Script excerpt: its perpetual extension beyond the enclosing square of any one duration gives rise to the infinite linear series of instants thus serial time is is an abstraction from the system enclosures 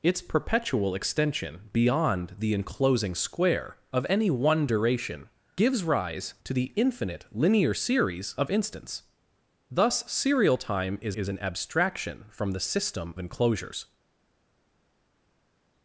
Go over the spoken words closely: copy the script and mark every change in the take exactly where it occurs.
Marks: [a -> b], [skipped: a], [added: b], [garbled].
its perpetual extension beyond the enclosing square of any one duration gives rise to the infinite linear series of instants thus serial time is is an abstraction from the system enclosures